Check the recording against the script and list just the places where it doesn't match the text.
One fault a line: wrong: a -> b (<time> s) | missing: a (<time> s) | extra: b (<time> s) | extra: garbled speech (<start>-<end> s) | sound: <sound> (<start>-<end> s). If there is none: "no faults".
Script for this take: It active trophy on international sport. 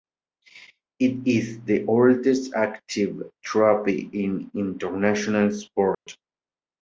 extra: is the oldest (1.3 s)
wrong: on -> in (4.1 s)
sound: dropout (5.9-6.1 s)